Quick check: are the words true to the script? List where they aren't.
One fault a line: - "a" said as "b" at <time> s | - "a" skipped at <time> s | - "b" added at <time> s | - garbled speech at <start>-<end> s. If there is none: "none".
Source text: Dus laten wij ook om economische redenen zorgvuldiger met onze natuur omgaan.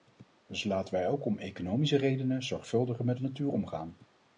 - "onze" skipped at 3.2 s